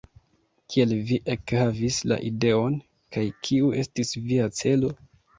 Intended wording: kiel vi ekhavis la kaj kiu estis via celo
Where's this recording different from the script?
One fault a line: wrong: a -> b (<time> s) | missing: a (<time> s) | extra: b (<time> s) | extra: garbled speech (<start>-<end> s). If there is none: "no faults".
extra: ideon (2.3 s)